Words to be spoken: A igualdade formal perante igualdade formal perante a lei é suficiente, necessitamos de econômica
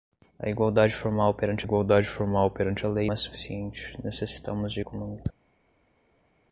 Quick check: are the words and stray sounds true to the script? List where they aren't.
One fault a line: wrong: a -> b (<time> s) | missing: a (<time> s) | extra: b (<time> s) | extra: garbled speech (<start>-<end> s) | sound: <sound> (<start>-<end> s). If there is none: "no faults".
no faults